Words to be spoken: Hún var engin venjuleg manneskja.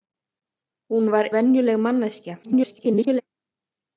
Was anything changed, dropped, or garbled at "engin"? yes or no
yes